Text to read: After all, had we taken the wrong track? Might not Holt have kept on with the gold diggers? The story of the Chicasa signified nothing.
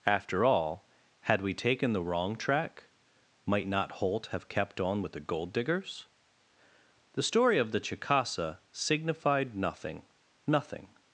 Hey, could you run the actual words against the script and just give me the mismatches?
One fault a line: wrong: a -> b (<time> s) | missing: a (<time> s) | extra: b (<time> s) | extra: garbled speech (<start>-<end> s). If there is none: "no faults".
extra: nothing (10.5 s)